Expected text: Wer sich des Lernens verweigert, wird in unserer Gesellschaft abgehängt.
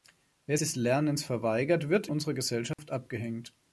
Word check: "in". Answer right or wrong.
wrong